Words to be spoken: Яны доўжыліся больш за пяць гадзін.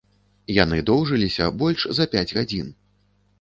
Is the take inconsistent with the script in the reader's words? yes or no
no